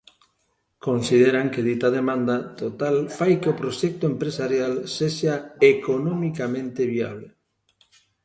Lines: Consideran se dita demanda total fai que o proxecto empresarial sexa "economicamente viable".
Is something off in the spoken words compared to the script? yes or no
yes